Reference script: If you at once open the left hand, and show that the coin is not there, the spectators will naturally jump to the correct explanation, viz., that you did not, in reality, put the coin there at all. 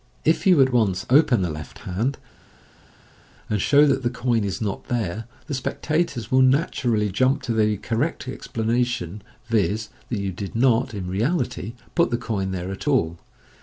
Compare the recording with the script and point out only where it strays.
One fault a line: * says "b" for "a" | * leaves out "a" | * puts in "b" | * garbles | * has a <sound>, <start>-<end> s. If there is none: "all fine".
all fine